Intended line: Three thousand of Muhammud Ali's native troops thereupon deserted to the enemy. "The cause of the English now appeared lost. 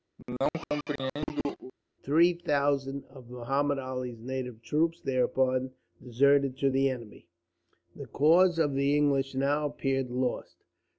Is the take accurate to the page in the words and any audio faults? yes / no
no